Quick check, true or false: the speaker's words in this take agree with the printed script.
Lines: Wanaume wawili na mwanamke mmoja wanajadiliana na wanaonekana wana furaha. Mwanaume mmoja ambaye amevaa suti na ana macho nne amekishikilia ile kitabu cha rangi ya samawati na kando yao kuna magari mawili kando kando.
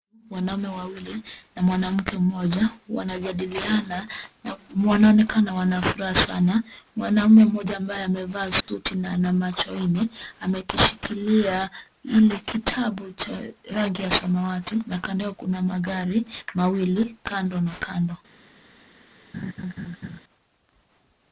false